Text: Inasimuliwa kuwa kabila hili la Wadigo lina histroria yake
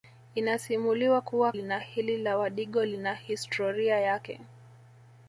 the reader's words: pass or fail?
fail